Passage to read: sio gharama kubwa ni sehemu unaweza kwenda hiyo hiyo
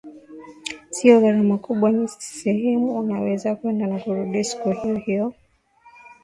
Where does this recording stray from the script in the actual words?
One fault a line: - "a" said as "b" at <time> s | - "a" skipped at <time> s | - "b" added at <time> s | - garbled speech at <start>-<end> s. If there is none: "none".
- "na kurudi siku" added at 3.9 s